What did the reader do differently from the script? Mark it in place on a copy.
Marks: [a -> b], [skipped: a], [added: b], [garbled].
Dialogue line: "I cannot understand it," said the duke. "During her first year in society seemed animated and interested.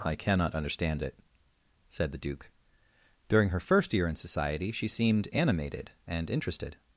"I cannot understand it," said the duke. "During her first year in society [added: she] seemed animated and interested.